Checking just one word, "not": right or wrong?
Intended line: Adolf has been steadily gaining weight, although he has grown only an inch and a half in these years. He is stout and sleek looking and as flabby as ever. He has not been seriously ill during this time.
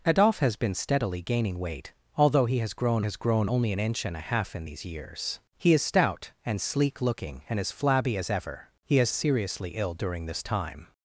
wrong